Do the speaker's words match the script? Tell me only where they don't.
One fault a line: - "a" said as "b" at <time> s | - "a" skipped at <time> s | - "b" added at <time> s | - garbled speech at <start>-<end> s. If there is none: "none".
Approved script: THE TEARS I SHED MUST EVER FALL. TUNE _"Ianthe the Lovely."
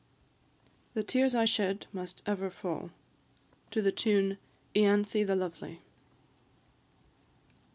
none